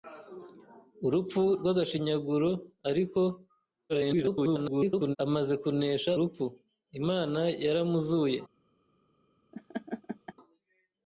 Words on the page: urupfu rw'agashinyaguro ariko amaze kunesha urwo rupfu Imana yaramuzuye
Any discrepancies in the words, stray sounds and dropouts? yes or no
yes